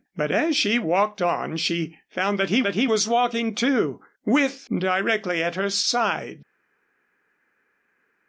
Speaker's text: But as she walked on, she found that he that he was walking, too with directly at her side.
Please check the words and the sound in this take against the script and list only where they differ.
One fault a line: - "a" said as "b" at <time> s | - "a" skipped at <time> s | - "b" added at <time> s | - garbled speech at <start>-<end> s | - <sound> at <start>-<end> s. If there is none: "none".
none